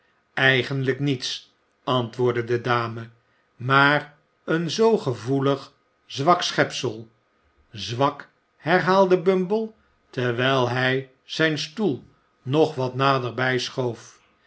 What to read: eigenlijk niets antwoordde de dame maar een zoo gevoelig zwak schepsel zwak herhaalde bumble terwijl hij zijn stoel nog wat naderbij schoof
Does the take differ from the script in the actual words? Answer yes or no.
no